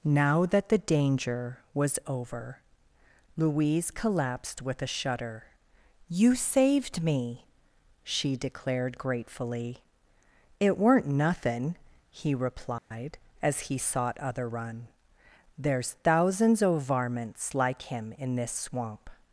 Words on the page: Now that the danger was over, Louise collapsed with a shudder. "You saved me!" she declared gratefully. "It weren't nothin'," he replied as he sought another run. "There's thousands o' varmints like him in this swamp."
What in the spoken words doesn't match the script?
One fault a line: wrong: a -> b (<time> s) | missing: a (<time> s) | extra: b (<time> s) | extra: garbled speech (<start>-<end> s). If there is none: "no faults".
wrong: another -> other (14.2 s)